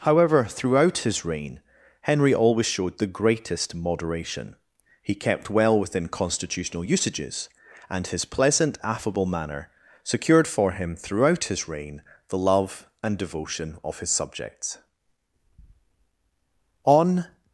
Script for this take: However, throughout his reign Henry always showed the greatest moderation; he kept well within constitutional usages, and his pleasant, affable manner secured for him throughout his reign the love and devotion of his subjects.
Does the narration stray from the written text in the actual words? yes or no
yes